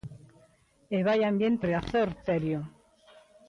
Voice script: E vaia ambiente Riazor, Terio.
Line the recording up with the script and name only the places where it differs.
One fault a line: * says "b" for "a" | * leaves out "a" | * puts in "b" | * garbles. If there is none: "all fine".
all fine